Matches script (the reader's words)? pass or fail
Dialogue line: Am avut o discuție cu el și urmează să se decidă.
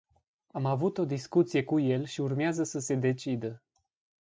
pass